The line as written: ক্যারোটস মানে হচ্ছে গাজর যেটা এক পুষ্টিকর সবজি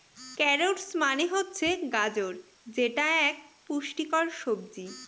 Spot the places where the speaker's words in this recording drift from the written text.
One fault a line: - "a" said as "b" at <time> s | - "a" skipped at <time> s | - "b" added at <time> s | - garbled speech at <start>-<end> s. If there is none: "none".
none